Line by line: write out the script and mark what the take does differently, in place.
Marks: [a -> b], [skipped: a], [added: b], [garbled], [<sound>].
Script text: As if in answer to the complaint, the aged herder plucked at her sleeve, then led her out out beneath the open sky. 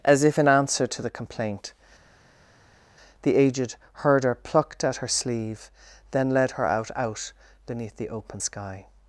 As if in answer to the complaint, the aged herder plucked at her sleeve, then led her out out beneath the open sky.